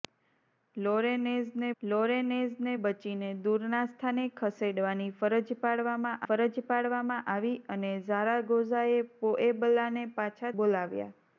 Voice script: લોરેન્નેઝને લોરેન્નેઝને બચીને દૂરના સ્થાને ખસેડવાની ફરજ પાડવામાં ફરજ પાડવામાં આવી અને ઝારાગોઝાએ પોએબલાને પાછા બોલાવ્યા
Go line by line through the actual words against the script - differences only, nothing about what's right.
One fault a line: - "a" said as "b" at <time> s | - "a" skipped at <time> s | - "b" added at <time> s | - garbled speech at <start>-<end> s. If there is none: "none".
none